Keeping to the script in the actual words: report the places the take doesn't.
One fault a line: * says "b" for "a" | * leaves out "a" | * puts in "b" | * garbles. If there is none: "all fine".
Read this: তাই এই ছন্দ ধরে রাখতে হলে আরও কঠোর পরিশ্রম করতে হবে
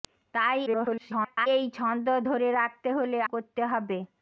* garbles
* leaves out "আরও কঠোর পরিশ্রম"